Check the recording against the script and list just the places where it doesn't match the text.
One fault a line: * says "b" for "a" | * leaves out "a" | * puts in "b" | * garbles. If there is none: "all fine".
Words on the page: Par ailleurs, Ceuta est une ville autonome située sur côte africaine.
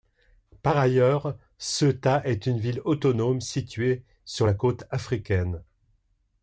* puts in "la"